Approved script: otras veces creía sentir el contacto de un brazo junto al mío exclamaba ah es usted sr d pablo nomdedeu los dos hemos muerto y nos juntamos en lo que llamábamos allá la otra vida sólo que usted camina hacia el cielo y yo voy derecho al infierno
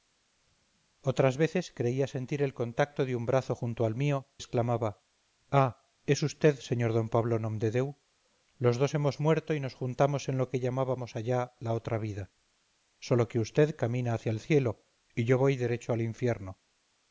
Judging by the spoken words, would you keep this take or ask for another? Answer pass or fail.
pass